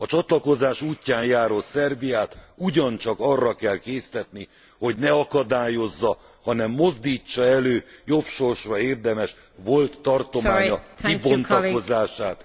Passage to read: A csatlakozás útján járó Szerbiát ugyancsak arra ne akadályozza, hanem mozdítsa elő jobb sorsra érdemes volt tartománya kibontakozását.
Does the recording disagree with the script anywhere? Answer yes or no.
yes